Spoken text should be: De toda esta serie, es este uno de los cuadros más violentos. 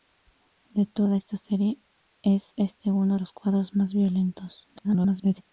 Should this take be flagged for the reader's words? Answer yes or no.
yes